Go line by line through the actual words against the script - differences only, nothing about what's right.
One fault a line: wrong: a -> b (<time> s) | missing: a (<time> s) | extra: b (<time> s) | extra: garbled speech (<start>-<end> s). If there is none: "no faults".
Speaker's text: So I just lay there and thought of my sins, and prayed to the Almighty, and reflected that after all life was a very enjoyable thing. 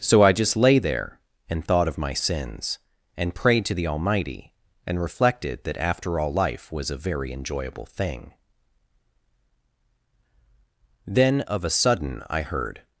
extra: Then of a sudden I heard (11.1 s)